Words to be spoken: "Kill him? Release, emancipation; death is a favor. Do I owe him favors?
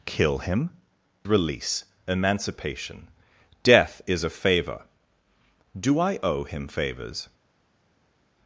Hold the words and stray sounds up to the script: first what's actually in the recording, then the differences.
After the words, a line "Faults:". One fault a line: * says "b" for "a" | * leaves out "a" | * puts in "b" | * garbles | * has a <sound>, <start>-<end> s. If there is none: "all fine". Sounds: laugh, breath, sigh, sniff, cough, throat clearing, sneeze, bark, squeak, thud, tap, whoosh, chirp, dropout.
"Kill him? Release, emancipation; death is a favor. Do I owe him favors?
Faults:
all fine